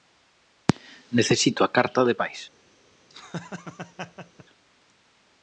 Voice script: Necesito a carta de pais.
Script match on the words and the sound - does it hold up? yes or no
no